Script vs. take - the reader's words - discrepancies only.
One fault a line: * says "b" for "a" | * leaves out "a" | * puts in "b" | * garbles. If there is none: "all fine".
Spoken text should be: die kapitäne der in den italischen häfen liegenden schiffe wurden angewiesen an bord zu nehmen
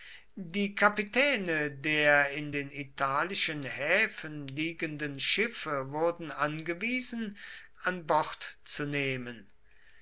all fine